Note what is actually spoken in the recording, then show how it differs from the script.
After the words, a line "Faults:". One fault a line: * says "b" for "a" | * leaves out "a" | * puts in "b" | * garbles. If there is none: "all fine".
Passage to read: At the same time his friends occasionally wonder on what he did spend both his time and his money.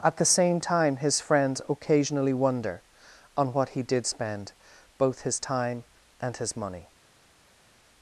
At the same time his friends occasionally wonder on what he did spend both his time and his money.
Faults:
all fine